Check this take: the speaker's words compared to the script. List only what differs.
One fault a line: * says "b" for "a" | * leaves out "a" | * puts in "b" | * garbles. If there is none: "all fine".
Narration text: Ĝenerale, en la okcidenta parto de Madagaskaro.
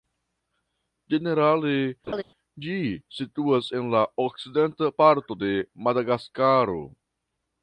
* puts in "ĝi situas"